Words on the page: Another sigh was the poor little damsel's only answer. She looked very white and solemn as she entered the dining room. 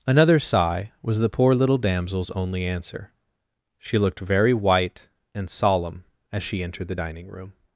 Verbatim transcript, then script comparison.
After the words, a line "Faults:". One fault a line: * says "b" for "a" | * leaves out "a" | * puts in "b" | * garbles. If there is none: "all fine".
Another sigh was the poor little damsel's only answer. She looked very white and solemn as she entered the dining room.
Faults:
all fine